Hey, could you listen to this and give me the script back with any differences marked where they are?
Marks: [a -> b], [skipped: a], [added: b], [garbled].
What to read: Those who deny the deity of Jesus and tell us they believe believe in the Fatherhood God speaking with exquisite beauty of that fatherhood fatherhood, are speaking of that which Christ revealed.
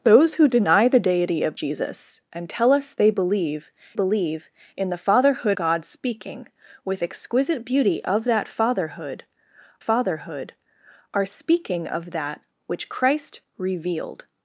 Those who deny the deity of Jesus and tell us they believe believe in the Fatherhood God speaking with exquisite beauty of that fatherhood fatherhood, are speaking of that which Christ revealed.